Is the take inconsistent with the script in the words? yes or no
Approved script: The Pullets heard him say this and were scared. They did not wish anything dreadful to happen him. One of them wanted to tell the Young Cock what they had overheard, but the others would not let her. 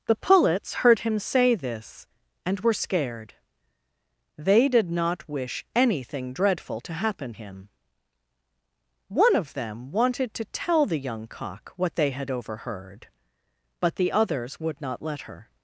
no